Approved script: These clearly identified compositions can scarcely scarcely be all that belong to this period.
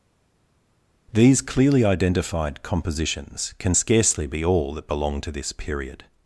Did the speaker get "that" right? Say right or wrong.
right